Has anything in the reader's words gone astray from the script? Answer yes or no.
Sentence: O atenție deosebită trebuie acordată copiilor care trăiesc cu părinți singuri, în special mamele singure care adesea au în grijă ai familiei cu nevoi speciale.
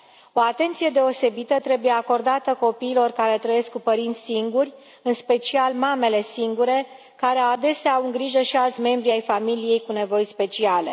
yes